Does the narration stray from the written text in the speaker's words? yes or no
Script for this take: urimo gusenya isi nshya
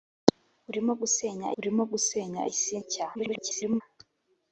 yes